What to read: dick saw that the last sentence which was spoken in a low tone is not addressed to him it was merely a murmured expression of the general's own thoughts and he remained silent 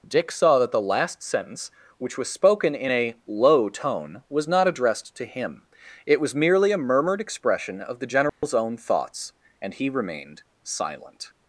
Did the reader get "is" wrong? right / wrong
wrong